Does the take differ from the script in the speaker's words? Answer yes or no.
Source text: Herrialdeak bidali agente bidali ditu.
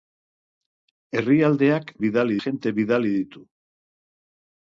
no